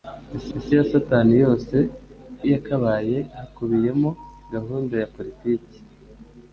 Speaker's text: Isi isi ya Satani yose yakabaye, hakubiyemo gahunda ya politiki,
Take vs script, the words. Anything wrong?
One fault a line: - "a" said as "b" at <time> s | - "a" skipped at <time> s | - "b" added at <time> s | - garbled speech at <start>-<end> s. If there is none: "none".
none